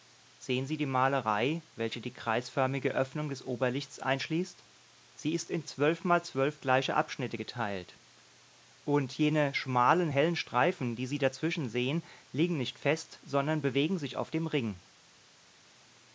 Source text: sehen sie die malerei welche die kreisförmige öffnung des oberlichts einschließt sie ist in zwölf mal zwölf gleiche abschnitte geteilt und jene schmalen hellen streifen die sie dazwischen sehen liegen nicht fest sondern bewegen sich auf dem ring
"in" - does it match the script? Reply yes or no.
yes